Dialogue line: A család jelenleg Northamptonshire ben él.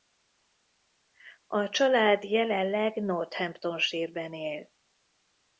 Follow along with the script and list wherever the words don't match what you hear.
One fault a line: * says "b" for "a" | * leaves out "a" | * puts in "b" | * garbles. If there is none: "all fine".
all fine